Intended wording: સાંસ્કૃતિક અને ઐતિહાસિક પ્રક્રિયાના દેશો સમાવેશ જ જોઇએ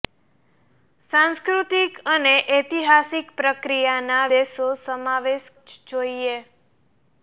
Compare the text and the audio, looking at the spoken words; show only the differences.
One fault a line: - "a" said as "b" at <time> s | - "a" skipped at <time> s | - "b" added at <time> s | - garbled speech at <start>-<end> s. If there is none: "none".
none